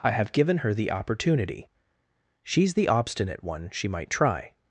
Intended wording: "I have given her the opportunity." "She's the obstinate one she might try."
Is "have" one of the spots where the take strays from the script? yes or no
no